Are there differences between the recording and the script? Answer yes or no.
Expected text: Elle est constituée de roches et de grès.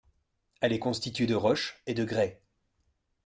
no